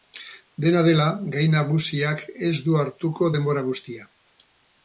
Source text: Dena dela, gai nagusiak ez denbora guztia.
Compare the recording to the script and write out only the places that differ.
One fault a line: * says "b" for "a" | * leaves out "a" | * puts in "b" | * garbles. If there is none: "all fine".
* puts in "du hartuko"